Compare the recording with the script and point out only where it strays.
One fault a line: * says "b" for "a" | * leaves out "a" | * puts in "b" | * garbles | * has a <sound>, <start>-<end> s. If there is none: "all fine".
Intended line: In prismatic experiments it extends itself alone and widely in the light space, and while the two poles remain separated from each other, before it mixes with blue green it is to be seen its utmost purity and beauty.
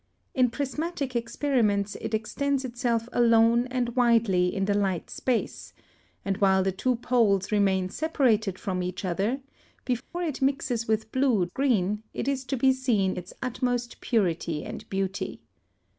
* has a dropout, 10.0-10.1 s